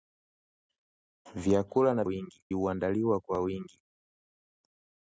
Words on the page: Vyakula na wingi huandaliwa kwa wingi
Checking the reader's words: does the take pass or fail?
pass